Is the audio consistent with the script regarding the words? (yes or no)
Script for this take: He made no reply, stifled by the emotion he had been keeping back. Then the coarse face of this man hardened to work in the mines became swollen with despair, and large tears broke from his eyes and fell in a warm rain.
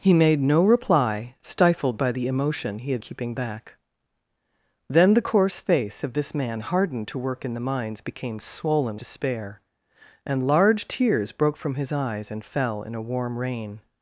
no